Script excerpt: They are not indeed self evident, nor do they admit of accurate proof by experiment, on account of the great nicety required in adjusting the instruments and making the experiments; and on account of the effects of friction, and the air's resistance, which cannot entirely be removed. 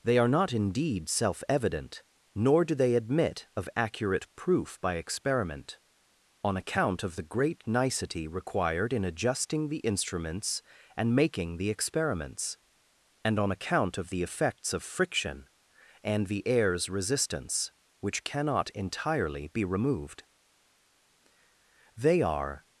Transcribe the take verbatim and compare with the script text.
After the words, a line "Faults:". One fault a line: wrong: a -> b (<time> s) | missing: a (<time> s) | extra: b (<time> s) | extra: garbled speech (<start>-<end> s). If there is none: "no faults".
They are not indeed self evident, nor do they admit of accurate proof by experiment, on account of the great nicety required in adjusting the instruments and making the experiments; and on account of the effects of friction, and the air's resistance, which cannot entirely be removed. They are
Faults:
extra: They are (21.9 s)